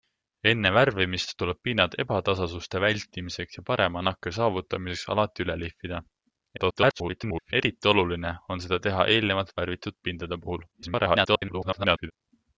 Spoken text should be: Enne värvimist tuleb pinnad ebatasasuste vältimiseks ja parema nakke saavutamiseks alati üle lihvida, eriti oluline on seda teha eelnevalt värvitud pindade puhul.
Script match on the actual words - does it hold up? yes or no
no